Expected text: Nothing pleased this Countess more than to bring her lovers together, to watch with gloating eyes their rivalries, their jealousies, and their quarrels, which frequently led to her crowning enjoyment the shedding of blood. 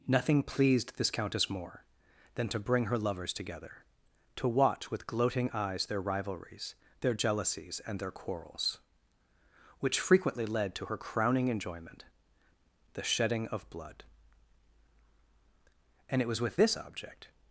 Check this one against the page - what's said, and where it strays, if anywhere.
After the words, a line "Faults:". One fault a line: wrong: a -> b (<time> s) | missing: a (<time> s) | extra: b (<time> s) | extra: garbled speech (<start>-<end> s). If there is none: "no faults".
Nothing pleased this Countess more than to bring her lovers together, to watch with gloating eyes their rivalries, their jealousies, and their quarrels, which frequently led to her crowning enjoyment the shedding of blood. And it was with this object
Faults:
extra: And it was with this object (16.1 s)